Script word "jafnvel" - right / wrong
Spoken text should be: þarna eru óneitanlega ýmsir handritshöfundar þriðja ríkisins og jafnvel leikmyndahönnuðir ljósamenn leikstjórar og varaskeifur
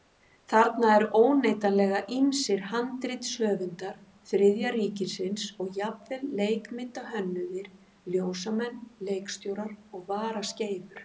right